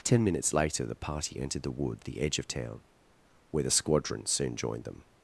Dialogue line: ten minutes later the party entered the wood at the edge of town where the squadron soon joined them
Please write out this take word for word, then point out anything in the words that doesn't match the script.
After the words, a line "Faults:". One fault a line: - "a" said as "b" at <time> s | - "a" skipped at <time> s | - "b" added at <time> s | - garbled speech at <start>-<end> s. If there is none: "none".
ten minutes later the party entered the wood the edge of town where the squadron soon joined them
Faults:
- "at" skipped at 2.0 s